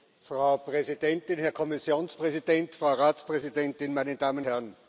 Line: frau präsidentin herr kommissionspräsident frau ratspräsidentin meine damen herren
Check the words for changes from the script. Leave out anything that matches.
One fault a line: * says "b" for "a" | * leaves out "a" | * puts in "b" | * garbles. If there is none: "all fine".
all fine